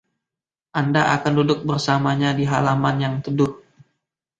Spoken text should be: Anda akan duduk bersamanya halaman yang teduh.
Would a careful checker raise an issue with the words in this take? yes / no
yes